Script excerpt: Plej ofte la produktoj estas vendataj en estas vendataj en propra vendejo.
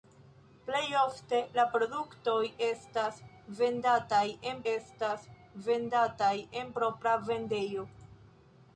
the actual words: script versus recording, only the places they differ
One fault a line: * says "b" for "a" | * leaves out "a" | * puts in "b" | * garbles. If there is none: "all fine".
all fine